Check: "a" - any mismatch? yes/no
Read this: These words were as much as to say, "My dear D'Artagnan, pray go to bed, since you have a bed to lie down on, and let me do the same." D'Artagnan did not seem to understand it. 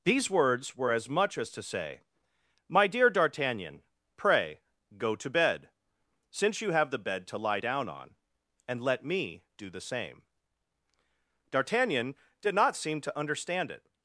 yes